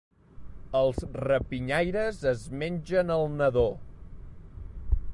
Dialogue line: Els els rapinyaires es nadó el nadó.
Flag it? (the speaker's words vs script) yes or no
yes